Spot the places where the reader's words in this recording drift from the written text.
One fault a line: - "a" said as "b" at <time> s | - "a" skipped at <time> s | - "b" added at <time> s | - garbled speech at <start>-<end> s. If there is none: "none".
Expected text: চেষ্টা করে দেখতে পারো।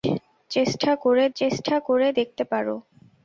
- "চেষ্টা করে" added at 1.4 s